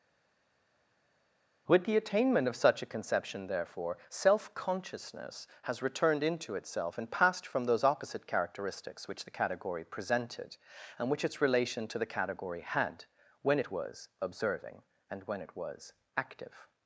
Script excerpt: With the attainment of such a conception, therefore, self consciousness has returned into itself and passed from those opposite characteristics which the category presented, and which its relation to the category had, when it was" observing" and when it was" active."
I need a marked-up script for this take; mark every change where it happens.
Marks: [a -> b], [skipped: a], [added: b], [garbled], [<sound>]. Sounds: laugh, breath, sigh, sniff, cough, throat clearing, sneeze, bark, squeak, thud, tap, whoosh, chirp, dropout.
With the attainment of such a conception, therefore, self consciousness has returned into itself and passed from those opposite characteristics which the category presented, and which its relation to the category had, when it was" observing" and when it was" active."